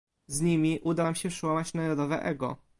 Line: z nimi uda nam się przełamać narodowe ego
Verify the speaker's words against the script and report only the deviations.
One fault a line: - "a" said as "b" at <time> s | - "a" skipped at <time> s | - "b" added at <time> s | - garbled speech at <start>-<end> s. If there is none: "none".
none